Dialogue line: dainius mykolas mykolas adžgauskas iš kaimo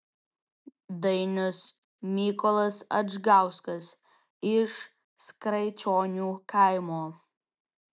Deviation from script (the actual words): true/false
true